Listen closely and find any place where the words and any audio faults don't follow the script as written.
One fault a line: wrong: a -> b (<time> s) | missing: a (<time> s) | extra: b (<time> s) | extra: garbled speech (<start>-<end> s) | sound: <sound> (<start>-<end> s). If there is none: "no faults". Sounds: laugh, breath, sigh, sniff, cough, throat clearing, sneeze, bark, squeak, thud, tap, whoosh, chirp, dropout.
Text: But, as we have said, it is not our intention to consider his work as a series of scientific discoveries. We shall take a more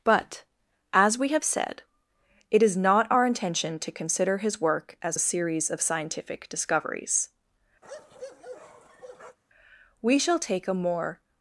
sound: bark (7.8-9.4 s)